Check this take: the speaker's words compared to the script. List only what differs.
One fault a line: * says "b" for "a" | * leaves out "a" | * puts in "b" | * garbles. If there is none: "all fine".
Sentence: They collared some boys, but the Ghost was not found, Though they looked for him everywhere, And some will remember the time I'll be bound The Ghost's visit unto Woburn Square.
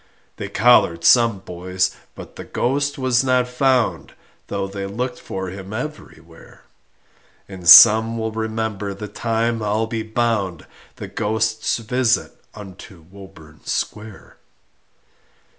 all fine